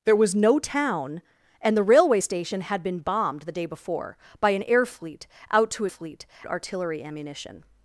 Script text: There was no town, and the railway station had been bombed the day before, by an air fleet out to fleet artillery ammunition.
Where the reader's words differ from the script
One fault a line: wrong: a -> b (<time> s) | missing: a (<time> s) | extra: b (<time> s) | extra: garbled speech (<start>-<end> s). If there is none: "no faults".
no faults